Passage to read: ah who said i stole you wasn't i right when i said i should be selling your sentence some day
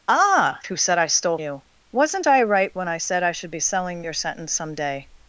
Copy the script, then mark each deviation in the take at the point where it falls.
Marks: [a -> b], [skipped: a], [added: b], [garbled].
ah who said i stole you wasn't i right when i said i should be selling your sentence some day